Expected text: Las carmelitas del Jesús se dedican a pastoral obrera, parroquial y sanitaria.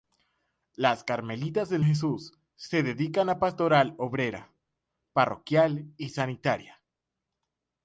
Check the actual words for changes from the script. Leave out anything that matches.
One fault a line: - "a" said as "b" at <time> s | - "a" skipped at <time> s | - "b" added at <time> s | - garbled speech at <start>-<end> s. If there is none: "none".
none